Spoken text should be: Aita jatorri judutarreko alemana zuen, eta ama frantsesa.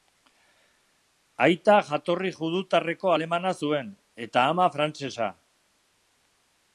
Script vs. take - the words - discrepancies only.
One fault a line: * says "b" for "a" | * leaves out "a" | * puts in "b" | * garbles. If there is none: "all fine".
all fine